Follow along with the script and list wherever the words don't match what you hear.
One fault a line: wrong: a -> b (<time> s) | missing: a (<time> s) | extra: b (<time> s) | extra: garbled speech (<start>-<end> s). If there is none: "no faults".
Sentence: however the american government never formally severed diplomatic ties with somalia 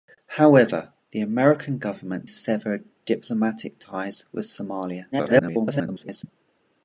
missing: never formally (2.2 s)
extra: garbled speech (5.1-6.2 s)